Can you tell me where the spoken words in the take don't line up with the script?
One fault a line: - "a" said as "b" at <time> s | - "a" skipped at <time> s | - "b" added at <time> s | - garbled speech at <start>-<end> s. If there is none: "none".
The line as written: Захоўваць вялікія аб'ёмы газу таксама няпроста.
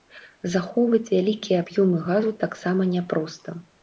none